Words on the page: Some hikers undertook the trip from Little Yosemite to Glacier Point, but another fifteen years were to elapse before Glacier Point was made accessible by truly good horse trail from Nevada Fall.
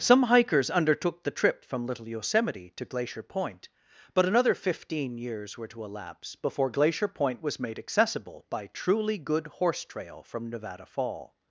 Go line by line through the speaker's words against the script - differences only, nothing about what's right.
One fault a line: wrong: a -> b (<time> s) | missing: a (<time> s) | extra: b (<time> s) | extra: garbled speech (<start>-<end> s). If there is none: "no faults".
no faults